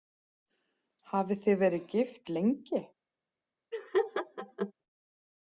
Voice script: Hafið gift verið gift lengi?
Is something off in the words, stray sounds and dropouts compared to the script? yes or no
yes